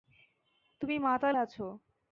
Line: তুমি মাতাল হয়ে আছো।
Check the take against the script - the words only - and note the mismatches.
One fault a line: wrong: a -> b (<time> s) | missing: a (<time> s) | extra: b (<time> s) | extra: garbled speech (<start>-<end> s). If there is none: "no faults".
missing: হয়ে (1.4 s)